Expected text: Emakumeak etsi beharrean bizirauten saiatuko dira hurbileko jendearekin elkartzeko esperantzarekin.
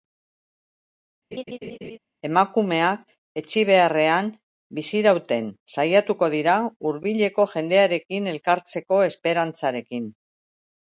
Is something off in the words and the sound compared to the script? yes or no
yes